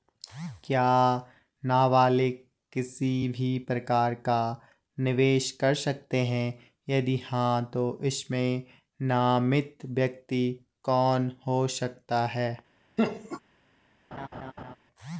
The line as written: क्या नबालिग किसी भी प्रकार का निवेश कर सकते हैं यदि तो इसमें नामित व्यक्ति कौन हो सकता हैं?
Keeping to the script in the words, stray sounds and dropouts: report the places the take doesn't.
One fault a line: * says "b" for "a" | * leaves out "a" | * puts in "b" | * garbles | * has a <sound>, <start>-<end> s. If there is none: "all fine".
* puts in "हाँ"
* has a laugh, 13.0-13.4 s
* has a laugh, 14.1-14.8 s